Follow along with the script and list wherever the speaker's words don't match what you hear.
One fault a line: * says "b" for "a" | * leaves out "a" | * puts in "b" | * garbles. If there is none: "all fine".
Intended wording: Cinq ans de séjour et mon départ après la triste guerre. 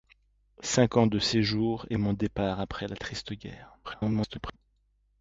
* garbles